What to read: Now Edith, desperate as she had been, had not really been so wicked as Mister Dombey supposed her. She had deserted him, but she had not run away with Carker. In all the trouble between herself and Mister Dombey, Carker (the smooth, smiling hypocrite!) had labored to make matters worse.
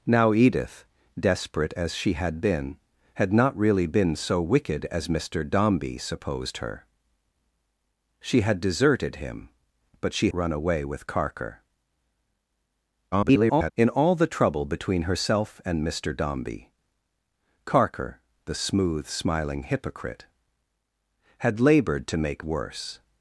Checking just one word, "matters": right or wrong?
wrong